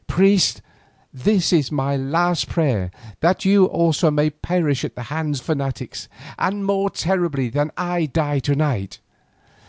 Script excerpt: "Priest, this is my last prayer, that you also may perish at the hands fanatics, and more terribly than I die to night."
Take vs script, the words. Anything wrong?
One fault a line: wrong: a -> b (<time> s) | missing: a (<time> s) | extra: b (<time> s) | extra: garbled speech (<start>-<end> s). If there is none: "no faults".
no faults